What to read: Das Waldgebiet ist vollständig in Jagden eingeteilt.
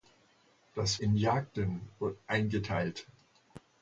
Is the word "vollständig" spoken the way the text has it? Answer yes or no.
no